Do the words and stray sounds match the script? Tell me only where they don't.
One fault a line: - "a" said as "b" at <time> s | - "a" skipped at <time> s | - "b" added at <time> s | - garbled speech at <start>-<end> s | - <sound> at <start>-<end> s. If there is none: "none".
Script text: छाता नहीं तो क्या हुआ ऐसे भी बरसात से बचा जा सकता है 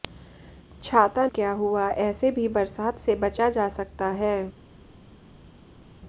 - "नहीं तो" skipped at 1.2 s